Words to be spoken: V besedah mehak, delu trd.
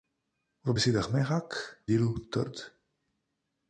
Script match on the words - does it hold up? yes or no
yes